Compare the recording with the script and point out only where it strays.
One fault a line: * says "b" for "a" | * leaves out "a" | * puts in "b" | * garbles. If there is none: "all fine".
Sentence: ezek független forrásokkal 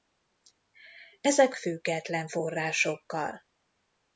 all fine